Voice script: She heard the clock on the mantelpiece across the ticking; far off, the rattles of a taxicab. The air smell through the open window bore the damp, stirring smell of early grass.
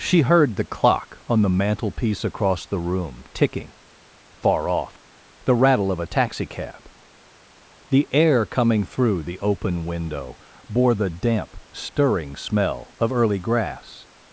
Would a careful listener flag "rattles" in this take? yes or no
yes